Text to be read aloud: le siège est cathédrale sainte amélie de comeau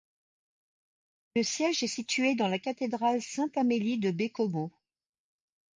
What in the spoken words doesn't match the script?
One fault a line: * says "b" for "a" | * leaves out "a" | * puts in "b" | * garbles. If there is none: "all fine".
* puts in "situé dans la"
* puts in "baie"